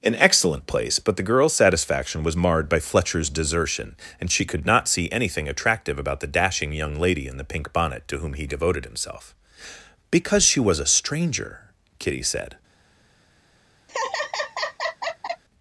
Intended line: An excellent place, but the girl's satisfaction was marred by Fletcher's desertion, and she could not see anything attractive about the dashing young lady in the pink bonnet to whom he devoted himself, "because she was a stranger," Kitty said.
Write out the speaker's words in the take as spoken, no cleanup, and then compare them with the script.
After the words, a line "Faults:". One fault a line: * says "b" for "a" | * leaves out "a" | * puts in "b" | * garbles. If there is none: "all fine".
An excellent place, but the girl's satisfaction was marred by Fletcher's desertion, and she could not see anything attractive about the dashing young lady in the pink bonnet to whom he devoted himself, "because she was a stranger," Kitty said.
Faults:
all fine